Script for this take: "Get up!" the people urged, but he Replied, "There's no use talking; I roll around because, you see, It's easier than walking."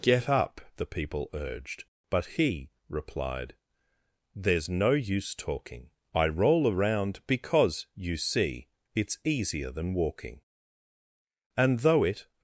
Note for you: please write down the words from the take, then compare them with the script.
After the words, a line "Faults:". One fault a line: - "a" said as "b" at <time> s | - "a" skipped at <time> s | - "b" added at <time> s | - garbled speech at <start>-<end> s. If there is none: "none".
"Get up!" the people urged, but he Replied, "There's no use talking; I roll around because, you see, It's easier than walking." And though it
Faults:
- "And though it" added at 11.6 s